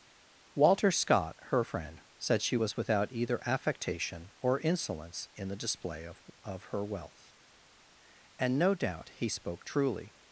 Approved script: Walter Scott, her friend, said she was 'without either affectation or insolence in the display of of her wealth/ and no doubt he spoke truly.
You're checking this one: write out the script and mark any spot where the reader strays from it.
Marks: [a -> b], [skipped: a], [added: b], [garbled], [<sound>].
Walter Scott, her friend, said she was 'without either affectation or insolence in the display of of her wealth/ and no doubt he spoke truly.